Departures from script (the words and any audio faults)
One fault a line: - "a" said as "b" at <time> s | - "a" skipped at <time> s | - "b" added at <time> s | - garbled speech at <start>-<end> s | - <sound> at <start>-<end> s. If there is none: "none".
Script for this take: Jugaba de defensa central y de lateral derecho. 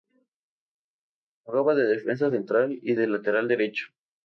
none